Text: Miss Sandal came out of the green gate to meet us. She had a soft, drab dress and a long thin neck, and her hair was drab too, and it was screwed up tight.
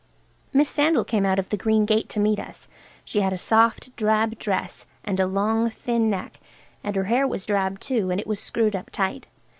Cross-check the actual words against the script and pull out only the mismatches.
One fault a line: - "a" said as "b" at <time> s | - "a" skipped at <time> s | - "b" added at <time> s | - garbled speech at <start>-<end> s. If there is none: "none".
none